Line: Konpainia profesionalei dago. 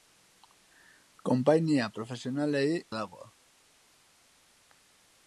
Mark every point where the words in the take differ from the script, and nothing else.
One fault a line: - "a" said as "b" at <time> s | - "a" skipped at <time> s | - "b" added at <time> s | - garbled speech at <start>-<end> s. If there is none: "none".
none